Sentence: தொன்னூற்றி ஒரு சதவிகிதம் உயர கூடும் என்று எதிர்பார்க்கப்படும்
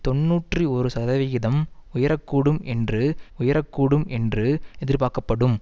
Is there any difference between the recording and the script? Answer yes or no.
yes